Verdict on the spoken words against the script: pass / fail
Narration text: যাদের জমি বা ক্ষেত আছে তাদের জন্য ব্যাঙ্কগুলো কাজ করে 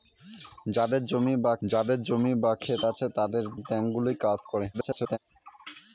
fail